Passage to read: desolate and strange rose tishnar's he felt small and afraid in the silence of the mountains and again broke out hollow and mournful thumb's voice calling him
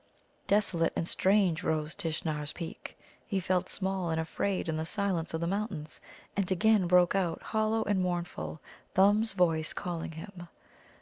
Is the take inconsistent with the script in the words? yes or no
yes